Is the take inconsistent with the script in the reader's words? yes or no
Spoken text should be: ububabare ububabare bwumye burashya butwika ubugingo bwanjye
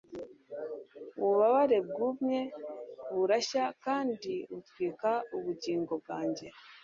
yes